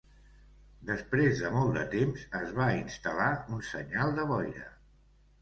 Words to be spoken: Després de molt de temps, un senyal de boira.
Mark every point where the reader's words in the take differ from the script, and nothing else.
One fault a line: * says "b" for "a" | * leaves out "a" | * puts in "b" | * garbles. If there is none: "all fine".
* puts in "es va instal·lar"